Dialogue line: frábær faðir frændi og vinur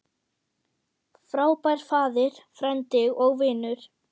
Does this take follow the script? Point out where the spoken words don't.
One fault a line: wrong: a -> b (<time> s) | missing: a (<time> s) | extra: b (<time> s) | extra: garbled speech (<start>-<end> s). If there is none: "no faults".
no faults